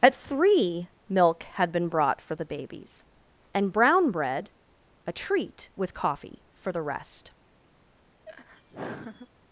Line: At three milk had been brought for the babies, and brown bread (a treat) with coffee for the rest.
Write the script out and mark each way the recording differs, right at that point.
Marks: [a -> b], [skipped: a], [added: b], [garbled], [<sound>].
At three milk had been brought for the babies, and brown bread (a treat) with coffee for the rest. [laugh]